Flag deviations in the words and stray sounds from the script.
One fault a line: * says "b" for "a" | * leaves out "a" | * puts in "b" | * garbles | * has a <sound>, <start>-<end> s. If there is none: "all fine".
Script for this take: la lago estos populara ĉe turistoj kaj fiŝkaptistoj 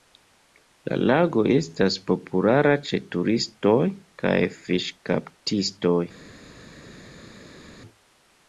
* says "estas" for "estos"